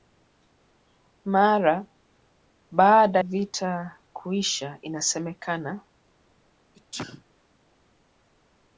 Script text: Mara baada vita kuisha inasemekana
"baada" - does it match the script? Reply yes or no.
yes